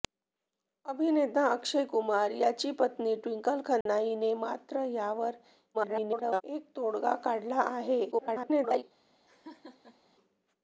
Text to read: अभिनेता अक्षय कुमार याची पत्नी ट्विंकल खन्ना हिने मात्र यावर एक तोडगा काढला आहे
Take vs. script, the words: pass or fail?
fail